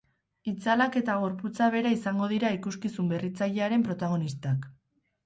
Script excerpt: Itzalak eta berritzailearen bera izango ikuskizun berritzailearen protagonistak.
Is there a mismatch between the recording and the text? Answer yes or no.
yes